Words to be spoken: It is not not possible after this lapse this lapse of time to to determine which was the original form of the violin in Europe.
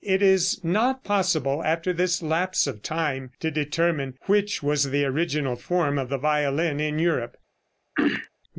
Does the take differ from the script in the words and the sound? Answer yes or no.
yes